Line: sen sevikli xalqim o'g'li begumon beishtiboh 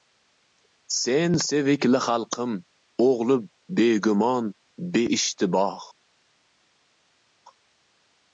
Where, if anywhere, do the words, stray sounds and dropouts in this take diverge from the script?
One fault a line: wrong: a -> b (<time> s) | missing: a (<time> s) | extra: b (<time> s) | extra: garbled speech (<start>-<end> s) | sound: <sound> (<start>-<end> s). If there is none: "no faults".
no faults